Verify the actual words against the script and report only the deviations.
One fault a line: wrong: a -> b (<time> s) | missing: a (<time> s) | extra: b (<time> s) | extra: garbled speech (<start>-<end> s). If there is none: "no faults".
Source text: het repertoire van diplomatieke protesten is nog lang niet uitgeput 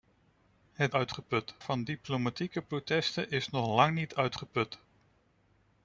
wrong: repertoire -> uitgeput (0.9 s)